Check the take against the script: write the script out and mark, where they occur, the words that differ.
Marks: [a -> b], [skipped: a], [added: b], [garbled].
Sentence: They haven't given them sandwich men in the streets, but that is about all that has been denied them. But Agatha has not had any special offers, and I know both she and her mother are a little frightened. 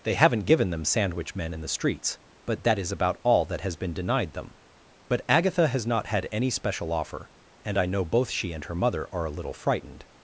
They haven't given them sandwich men in the streets, but that is about all that has been denied them. But Agatha has not had any special [offers, -> offer] and I know both she and her mother are a little frightened.